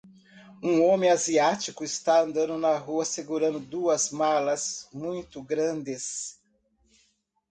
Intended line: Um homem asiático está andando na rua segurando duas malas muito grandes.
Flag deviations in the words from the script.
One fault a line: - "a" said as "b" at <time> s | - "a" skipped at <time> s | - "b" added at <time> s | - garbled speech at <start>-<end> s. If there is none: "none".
none